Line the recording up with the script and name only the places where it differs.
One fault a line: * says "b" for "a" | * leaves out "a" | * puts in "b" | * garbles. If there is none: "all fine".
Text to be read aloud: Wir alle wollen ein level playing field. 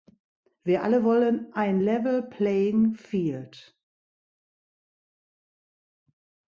all fine